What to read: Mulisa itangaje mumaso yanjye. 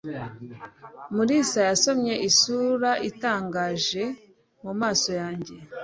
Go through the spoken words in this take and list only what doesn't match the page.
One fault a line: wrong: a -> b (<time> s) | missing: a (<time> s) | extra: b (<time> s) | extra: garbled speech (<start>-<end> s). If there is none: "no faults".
extra: yasomye isura (1.7 s)